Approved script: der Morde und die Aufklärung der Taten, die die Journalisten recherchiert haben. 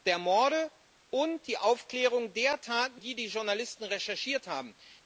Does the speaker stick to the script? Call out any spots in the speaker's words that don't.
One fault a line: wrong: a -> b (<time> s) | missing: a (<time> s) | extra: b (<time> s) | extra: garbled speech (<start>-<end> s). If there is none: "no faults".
no faults